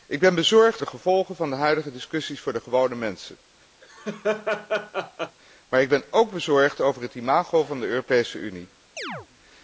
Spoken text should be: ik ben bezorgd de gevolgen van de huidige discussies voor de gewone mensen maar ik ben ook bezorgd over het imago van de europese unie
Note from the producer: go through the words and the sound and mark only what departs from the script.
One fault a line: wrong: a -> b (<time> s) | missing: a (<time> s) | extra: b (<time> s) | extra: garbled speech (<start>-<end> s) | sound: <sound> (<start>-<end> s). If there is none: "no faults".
sound: laugh (3.8-5.4 s)
sound: chirp (9.0-9.3 s)